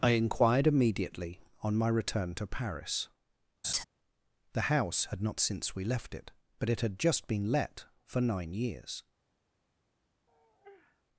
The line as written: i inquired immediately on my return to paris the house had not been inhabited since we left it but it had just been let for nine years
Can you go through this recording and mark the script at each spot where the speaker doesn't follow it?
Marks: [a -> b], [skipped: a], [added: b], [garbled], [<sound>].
i inquired immediately on my return to paris [laugh] the house had not [skipped: been inhabited] since we left it but it had just been let for nine years [sigh]